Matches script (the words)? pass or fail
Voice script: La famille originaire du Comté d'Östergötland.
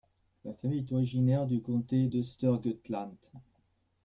fail